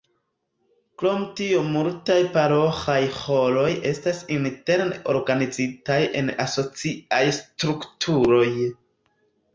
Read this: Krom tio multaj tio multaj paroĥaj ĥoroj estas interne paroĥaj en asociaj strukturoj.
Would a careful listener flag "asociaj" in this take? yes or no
no